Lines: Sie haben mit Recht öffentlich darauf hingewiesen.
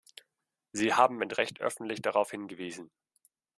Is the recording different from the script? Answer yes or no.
no